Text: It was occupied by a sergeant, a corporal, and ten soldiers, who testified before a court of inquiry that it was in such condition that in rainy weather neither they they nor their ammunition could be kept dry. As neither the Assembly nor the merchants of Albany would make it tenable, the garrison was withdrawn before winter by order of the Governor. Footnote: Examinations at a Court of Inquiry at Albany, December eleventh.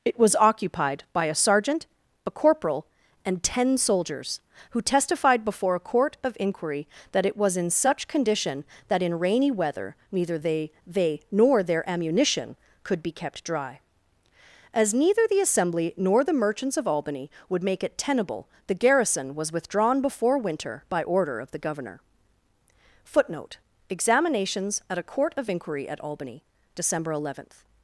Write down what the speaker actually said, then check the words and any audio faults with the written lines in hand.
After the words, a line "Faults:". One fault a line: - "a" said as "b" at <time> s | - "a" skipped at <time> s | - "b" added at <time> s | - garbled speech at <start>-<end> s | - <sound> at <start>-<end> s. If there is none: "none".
It was occupied by a sergeant, a corporal, and ten soldiers, who testified before a court of inquiry that it was in such condition that in rainy weather neither they they nor their ammunition could be kept dry. As neither the Assembly nor the merchants of Albany would make it tenable, the garrison was withdrawn before winter by order of the Governor. Footnote: Examinations at a Court of Inquiry at Albany, December eleventh.
Faults:
none